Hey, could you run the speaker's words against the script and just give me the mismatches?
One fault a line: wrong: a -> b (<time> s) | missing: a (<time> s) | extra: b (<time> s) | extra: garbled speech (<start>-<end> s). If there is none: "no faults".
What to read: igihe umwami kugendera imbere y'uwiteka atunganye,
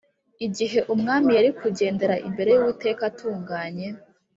extra: yari (1.4 s)